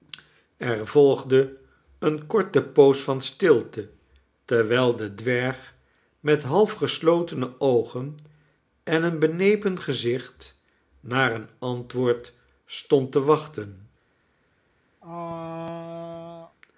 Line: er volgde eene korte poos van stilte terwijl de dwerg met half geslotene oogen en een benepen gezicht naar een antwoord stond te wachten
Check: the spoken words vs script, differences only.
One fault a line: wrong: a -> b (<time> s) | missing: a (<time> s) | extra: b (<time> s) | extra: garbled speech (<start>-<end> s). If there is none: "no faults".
no faults